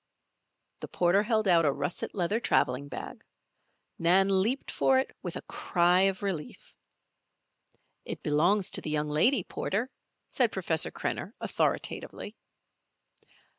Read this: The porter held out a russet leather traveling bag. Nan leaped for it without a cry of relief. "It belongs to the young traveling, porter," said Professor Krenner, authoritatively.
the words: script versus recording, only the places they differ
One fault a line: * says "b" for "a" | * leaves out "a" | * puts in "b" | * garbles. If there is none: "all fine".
* says "with" for "without"
* says "lady" for "traveling"